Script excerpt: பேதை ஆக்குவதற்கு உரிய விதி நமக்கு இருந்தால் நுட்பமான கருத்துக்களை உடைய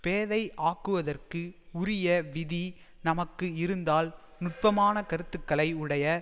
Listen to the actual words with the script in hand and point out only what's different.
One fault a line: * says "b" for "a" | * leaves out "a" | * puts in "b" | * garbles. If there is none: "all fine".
all fine